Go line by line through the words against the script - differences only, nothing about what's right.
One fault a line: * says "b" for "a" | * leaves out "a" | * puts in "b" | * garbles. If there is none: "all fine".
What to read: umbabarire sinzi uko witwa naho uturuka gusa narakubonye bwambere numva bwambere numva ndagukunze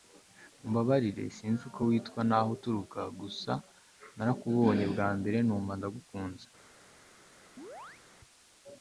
* leaves out "bwambere numva"